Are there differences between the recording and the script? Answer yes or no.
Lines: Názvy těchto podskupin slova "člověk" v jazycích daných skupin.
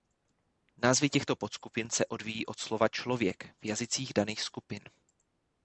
yes